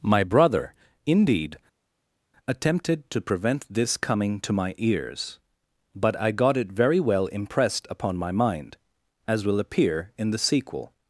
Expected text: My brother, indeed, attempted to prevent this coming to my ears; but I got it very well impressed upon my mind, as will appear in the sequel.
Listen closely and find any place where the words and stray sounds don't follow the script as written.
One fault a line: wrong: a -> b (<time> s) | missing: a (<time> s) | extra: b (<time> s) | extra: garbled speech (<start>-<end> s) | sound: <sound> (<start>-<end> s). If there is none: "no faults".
no faults